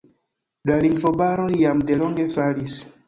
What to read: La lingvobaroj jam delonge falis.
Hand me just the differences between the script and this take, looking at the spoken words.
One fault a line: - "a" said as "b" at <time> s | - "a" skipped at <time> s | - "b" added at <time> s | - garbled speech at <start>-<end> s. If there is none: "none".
none